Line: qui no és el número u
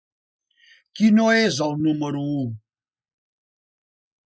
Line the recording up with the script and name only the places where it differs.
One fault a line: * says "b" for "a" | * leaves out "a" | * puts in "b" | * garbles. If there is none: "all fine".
all fine